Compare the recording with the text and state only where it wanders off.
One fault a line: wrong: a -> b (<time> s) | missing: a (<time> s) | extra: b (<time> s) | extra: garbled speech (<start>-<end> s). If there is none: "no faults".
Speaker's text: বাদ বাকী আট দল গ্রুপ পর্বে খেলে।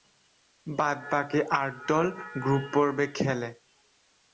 no faults